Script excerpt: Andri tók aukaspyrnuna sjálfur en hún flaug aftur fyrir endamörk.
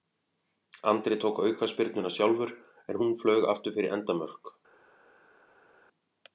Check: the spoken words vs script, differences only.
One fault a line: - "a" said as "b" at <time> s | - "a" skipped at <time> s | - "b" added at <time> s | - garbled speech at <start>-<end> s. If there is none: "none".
none